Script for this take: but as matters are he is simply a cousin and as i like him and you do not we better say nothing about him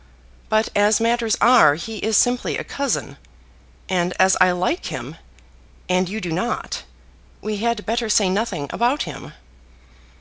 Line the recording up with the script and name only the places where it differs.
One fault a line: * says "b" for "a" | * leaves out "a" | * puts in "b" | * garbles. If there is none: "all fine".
* puts in "had"